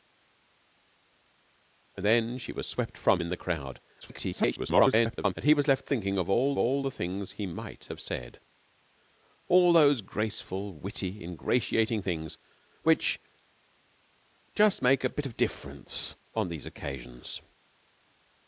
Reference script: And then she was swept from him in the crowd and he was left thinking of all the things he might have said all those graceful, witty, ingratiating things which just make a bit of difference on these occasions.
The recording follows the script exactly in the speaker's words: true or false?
false